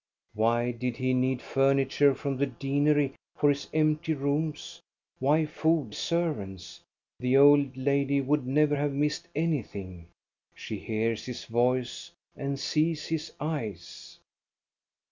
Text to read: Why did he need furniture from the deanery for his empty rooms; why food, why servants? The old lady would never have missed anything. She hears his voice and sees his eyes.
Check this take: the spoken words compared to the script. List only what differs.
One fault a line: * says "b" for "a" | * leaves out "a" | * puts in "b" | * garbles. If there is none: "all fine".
* leaves out "why"